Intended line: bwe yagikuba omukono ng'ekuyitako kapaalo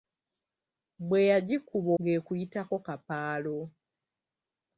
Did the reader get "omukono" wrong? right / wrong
wrong